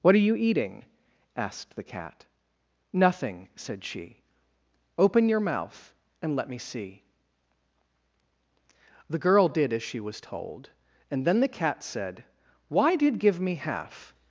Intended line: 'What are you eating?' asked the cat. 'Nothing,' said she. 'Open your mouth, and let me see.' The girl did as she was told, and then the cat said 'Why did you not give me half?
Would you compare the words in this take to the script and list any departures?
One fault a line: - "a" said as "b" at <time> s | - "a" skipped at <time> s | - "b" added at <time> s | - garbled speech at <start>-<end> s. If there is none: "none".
- "you not" skipped at 13.2 s